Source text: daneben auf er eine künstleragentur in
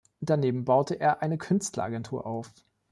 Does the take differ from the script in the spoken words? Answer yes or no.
yes